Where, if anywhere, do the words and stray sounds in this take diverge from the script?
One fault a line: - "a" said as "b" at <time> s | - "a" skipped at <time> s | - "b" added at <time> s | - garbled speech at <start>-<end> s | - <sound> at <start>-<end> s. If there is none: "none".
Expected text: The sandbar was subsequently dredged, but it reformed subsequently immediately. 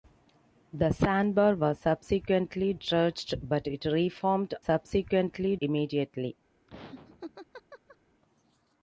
- laugh at 6.7-8.0 s